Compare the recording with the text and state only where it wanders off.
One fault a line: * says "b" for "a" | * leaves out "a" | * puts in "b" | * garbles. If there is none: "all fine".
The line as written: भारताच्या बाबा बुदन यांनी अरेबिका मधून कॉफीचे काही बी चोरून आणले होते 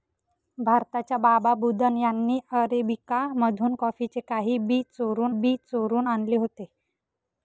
* puts in "बी चोरून"